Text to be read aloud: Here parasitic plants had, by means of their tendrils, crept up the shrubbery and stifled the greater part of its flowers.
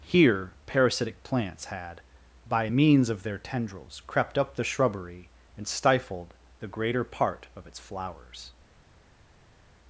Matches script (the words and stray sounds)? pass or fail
pass